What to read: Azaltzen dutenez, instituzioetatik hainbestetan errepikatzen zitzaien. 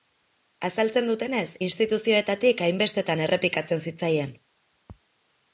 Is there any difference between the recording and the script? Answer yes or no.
no